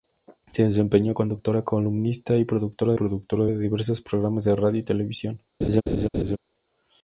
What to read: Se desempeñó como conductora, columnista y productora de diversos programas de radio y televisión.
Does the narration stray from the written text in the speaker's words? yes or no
yes